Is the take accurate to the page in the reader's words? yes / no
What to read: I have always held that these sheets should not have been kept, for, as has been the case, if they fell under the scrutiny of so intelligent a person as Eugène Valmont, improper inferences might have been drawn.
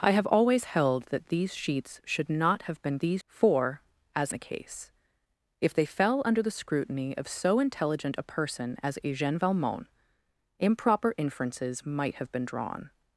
no